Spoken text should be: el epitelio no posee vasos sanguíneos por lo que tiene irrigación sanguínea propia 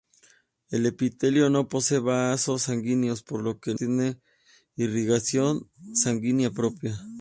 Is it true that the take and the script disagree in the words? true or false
false